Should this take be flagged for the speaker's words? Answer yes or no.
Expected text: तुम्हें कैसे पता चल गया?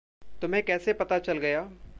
no